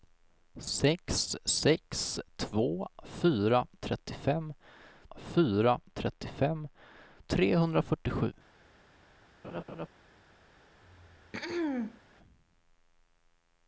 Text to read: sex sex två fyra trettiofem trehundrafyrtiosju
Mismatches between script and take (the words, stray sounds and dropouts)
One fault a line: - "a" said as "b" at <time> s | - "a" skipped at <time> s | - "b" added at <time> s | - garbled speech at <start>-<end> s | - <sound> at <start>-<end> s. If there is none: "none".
- "fyra trettiofem" added at 5.2 s
- laugh at 9.4-9.9 s
- throat clearing at 10.8-12.0 s